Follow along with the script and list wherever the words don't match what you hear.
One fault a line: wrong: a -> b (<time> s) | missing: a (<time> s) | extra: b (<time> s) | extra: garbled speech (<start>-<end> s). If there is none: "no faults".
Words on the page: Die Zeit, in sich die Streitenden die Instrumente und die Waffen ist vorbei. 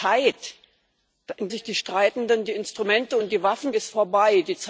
no faults